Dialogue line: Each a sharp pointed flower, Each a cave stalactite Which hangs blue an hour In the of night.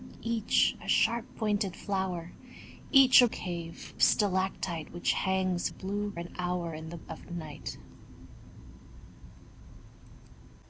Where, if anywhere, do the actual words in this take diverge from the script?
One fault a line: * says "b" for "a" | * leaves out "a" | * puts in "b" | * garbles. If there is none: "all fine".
all fine